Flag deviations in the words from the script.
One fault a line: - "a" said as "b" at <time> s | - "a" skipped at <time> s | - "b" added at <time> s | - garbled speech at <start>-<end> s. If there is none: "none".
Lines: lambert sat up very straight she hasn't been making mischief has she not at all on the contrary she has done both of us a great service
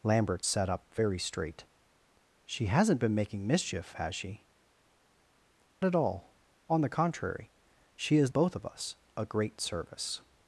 - "not" skipped at 4.5 s
- "done" skipped at 8.3 s